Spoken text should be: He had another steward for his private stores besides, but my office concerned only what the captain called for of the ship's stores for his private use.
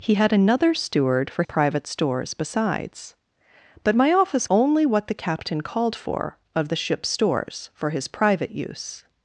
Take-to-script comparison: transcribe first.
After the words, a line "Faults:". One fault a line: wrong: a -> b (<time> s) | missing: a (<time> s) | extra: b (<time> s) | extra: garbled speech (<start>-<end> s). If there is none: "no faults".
He had another steward for private stores besides, but my office only what the captain called for of the ship's stores for his private use.
Faults:
missing: his (1.4 s)
missing: concerned (4.5 s)